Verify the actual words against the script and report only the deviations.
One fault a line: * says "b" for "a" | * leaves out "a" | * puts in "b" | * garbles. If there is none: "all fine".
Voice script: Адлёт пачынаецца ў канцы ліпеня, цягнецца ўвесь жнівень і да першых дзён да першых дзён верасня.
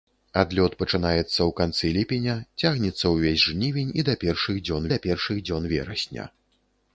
all fine